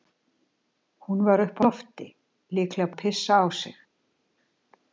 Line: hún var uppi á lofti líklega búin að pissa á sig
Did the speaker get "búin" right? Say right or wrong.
wrong